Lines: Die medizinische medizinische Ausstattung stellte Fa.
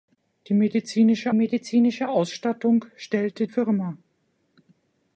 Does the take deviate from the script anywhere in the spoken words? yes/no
no